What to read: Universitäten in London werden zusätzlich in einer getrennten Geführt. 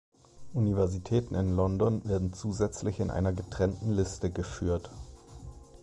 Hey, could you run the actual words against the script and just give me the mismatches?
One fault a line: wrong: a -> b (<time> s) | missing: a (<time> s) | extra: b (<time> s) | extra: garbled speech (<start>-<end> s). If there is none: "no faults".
extra: Liste (3.9 s)